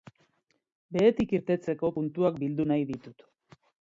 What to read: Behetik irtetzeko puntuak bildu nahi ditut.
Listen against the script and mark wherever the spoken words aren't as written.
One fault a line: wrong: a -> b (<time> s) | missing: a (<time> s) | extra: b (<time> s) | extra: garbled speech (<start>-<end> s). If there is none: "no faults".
no faults